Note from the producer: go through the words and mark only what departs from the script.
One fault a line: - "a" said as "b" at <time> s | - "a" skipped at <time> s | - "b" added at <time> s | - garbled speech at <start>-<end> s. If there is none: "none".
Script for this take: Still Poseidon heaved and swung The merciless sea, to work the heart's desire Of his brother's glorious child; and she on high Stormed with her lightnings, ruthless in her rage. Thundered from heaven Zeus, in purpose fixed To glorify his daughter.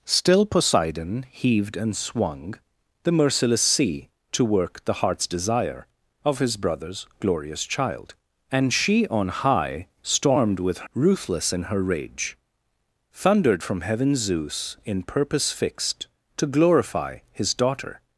- "her lightnings" skipped at 10.9 s